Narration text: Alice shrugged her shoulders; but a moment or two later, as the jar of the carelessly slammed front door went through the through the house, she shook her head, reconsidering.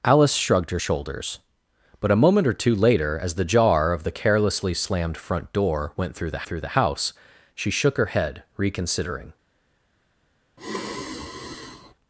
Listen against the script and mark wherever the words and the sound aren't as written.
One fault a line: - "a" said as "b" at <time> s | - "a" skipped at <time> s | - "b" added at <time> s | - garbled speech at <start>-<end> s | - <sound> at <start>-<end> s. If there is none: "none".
- sigh at 10.6-11.9 s